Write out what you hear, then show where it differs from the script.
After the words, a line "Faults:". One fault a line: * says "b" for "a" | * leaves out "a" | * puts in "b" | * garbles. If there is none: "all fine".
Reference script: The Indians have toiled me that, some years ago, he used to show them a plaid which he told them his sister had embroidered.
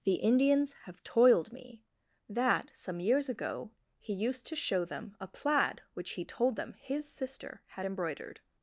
The Indians have toiled me that, some years ago, he used to show them a plaid which he told them his sister had embroidered.
Faults:
all fine